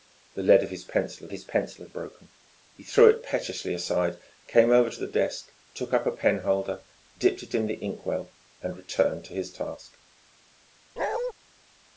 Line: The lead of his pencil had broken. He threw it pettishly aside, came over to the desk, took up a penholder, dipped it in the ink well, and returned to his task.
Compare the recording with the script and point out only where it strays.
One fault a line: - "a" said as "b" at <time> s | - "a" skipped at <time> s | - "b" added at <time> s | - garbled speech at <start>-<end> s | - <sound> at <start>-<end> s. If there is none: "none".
- "his pencil" added at 1.3 s
- bark at 11.0-11.3 s